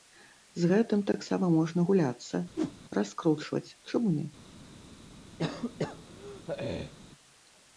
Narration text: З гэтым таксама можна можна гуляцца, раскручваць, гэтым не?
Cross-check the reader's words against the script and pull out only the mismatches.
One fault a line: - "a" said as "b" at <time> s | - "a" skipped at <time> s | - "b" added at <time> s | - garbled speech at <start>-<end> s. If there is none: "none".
- "можна" skipped at 1.8 s
- "гэтым" said as "чаму" at 3.9 s